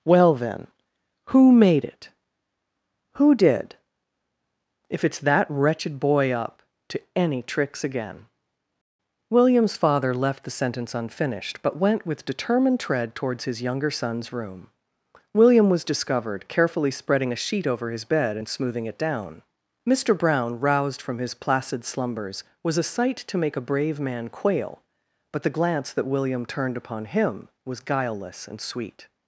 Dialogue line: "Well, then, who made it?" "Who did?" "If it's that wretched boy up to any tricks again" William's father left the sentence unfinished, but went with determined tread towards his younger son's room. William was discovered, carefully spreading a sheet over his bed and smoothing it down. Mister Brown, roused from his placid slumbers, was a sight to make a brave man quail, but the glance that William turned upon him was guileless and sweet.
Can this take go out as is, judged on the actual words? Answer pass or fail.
pass